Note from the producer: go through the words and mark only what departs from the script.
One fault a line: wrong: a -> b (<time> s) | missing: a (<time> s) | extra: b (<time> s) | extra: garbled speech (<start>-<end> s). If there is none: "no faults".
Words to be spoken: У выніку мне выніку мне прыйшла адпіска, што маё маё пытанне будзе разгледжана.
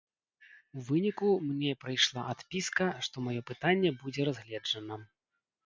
missing: выніку мне (1.7 s)
missing: маё (3.4 s)